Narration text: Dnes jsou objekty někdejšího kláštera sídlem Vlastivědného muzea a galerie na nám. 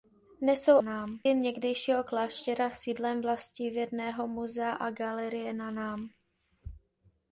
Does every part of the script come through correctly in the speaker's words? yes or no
no